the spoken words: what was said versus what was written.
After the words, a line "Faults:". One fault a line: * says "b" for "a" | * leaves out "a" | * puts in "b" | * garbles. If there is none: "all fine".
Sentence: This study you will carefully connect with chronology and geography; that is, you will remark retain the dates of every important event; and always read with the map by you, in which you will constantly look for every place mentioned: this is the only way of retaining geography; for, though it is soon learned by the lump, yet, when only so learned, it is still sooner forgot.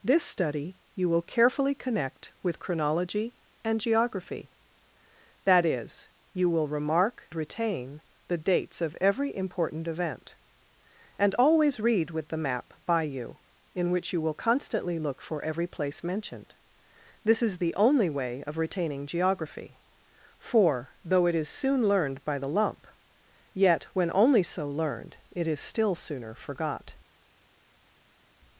This study you will carefully connect with chronology and geography; that is, you will remark retain the dates of every important event; and always read with the map by you, in which you will constantly look for every place mentioned: this is the only way of retaining geography; for, though it is soon learned by the lump, yet, when only so learned, it is still sooner forgot.
Faults:
all fine